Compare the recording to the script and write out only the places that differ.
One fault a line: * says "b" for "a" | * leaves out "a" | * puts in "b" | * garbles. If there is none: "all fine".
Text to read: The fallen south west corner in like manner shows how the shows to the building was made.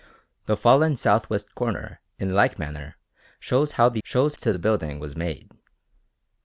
all fine